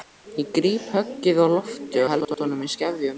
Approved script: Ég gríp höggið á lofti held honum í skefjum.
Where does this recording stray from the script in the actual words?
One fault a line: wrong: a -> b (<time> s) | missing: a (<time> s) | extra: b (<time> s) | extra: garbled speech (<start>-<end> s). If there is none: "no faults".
no faults